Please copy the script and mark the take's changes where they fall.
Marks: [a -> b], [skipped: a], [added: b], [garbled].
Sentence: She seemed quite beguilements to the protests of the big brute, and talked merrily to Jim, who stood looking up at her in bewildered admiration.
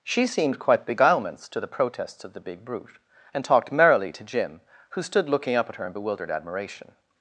She seemed quite beguilements to the protests of the big brute, and talked merrily to Jim, who stood looking up at her in bewildered admiration.